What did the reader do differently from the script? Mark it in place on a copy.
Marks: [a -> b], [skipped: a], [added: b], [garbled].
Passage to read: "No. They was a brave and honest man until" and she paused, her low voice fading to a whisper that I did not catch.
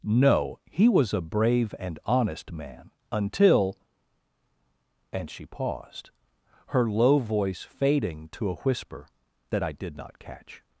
"No. [They -> He] was a brave and honest man until" and she paused, her low voice fading to a whisper that I did not catch.